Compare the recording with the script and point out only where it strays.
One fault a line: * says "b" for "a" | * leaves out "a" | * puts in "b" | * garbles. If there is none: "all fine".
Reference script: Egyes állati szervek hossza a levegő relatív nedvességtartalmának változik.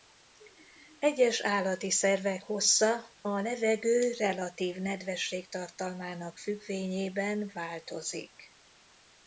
* puts in "függvényében"